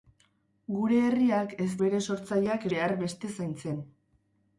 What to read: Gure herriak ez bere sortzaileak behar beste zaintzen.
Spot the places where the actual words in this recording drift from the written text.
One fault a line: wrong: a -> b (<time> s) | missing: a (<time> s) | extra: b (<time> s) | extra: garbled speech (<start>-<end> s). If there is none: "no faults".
no faults